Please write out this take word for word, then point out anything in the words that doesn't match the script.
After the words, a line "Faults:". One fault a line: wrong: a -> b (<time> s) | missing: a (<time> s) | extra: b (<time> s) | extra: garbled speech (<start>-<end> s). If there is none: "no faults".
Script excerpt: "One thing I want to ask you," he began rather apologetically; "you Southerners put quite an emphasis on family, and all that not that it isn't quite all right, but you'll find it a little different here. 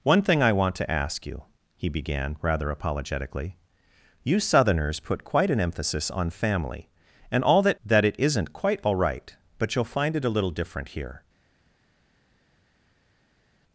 "One thing I want to ask you," he began rather apologetically; "you Southerners put quite an emphasis on family, and all that that it isn't quite all right, but you'll find it a little different here.
Faults:
missing: not (7.8 s)